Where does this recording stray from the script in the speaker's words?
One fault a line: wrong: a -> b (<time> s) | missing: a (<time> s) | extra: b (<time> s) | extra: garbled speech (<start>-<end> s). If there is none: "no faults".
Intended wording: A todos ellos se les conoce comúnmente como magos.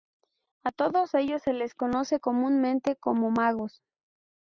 no faults